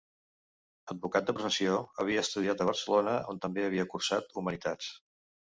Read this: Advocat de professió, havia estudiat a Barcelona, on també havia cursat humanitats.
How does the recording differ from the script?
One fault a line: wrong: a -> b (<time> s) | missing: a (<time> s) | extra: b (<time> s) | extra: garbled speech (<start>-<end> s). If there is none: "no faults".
no faults